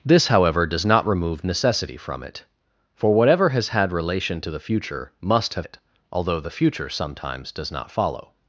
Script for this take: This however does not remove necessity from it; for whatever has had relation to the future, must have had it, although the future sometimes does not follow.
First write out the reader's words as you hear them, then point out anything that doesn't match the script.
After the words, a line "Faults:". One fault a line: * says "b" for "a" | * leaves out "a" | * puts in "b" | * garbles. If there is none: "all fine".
This however does not remove necessity from it; for whatever has had relation to the future, must have it, although the future sometimes does not follow.
Faults:
* leaves out "had"